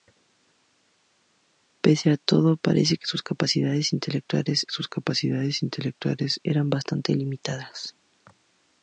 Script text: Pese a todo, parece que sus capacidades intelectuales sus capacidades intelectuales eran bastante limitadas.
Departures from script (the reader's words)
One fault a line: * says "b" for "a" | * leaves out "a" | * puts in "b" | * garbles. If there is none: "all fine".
all fine